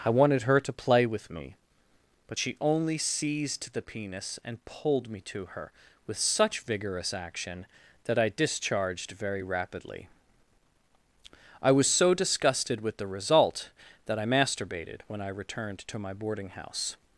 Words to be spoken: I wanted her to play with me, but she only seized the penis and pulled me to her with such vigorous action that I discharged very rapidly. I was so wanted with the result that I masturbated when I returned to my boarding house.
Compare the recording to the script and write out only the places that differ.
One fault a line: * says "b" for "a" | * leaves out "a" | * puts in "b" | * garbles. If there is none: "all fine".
* says "disgusted" for "wanted"